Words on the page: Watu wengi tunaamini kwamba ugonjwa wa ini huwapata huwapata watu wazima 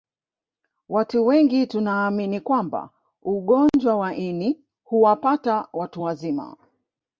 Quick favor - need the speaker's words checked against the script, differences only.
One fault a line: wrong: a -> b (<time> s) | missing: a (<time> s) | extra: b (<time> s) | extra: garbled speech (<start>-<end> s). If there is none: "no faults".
missing: huwapata (5.7 s)